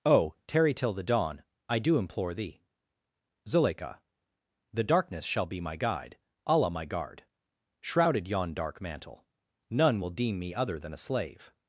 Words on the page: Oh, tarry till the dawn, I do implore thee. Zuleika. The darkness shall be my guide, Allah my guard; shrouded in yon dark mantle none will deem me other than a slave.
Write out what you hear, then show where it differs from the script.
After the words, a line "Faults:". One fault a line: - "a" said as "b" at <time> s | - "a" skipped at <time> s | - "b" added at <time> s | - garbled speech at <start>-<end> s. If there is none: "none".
Oh, tarry till the dawn, I do implore thee. Zuleika. The darkness shall be my guide, Allah my guard; shrouded yon dark mantle none will deem me other than a slave.
Faults:
- "in" skipped at 8.3 s